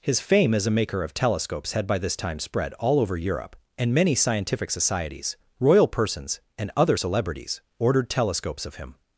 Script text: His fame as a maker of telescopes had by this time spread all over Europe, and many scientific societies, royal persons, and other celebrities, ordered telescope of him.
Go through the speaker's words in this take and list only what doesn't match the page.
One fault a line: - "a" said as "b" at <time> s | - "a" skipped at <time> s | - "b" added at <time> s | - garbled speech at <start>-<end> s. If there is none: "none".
- "telescope" said as "telescopes" at 8.1 s